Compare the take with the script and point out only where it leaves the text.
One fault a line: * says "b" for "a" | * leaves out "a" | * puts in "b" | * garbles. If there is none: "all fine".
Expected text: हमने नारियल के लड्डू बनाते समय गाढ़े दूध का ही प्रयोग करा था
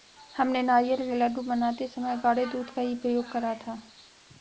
all fine